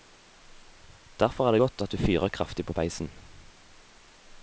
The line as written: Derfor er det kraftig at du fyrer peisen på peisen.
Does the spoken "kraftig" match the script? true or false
false